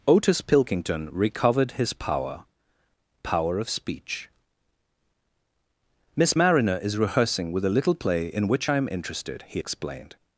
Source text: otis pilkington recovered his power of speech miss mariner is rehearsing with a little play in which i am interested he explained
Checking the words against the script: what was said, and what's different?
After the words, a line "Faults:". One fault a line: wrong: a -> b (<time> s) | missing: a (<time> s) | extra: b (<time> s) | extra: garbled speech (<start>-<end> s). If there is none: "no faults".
otis pilkington recovered his power power of speech miss mariner is rehearsing with a little play in which i am interested he explained
Faults:
extra: power (3.2 s)